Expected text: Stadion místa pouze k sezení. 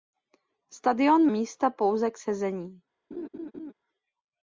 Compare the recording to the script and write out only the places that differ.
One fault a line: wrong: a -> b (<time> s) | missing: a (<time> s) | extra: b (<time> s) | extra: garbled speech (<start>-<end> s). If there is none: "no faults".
no faults